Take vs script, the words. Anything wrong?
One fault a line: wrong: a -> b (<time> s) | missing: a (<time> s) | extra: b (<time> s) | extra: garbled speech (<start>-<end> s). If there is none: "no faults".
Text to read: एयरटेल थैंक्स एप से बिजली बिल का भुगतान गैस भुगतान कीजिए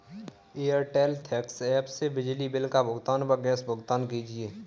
extra: व (3.2 s)